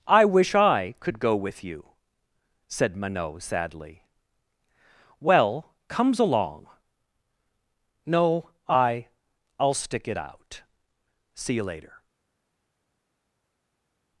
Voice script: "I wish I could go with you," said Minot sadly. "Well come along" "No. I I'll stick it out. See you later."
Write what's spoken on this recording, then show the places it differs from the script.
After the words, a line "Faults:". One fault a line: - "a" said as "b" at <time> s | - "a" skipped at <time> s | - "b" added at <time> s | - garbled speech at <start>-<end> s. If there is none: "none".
"I wish I could go with you," said Minot sadly. "Well comes along" "No. I I'll stick it out. See you later."
Faults:
- "come" said as "comes" at 5.9 s